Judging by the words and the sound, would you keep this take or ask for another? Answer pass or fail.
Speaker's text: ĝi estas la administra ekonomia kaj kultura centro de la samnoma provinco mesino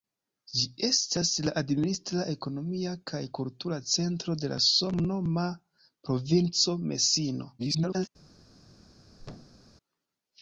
fail